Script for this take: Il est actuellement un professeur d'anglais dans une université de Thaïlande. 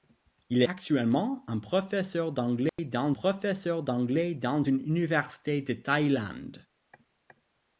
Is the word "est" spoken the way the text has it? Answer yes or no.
no